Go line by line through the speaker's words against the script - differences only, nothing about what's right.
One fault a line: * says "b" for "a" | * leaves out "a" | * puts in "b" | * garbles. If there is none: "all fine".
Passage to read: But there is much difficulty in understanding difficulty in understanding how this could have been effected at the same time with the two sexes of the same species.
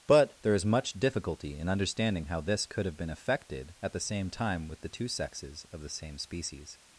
* leaves out "difficulty in understanding"